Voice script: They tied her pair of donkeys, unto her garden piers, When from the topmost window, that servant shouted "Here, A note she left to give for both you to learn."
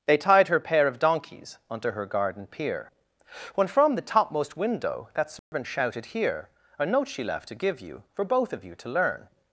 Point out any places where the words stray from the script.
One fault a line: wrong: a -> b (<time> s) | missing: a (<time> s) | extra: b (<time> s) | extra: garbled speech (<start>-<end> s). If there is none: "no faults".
wrong: piers -> pier (2.5 s)
extra: you (7.8 s)
extra: of (8.5 s)